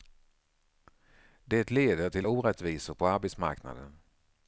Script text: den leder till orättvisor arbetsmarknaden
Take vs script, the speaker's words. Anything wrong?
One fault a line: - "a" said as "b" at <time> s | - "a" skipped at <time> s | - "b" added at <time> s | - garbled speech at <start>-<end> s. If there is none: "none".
- "den" said as "det" at 1.4 s
- "på" added at 2.9 s